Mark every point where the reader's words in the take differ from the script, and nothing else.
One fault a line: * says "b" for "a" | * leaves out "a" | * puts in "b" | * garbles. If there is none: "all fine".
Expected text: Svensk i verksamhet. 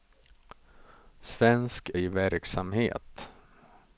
all fine